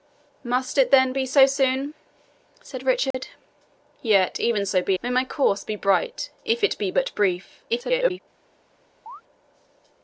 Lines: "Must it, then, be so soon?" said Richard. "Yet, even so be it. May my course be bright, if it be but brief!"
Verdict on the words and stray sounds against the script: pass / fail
fail